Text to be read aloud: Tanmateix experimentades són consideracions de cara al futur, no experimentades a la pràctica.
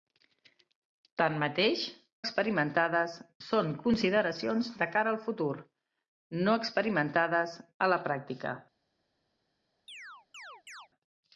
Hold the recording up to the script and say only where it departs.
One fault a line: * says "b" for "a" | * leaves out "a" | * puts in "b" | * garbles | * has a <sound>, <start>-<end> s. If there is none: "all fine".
* has a chirp, 9.9-10.9 s